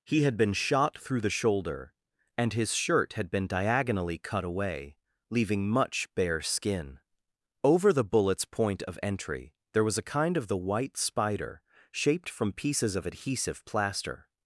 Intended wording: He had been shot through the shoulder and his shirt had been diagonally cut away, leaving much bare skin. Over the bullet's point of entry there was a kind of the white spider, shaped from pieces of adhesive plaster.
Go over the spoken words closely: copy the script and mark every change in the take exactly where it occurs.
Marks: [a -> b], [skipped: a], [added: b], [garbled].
He had been shot through the shoulder and his shirt had been diagonally cut away, leaving much bare skin. Over the bullet's point of entry there was a kind of the white spider, shaped from pieces of adhesive plaster.